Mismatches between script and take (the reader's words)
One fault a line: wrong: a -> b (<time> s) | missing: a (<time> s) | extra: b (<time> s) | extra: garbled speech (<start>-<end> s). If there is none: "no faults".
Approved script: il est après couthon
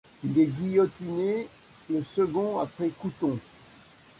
extra: guillotiné le second (0.5 s)